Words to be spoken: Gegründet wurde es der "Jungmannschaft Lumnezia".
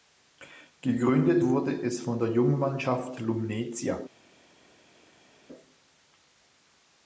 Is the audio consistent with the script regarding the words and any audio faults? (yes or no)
no